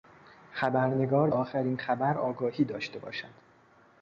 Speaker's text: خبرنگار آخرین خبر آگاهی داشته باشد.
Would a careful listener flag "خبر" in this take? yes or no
no